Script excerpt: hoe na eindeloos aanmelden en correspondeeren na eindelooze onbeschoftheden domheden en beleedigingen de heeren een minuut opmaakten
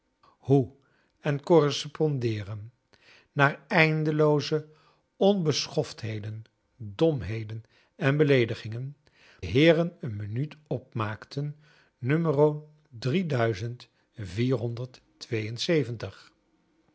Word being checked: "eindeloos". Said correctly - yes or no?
no